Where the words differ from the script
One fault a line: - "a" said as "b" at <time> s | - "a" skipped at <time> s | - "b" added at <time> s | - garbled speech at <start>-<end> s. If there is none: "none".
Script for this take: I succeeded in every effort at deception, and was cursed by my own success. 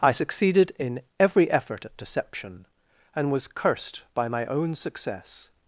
none